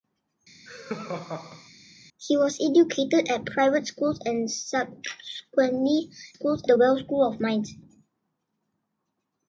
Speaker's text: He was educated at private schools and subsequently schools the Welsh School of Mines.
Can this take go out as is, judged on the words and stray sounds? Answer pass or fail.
fail